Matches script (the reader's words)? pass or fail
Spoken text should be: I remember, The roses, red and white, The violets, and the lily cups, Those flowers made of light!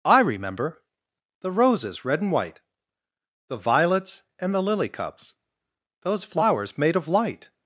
pass